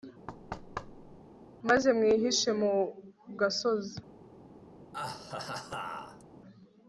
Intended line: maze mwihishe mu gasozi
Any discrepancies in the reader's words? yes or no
no